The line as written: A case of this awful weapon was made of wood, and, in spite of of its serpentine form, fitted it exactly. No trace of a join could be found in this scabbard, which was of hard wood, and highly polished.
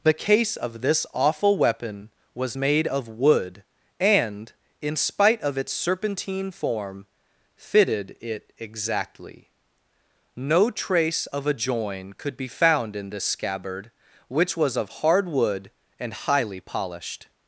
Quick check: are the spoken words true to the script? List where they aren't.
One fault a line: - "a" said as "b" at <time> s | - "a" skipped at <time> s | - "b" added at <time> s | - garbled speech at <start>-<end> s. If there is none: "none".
- "A" said as "The" at 0.0 s
- "of" skipped at 5.6 s